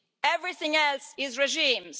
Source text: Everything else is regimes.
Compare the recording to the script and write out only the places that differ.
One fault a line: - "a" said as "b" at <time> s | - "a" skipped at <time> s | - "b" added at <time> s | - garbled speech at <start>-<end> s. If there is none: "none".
none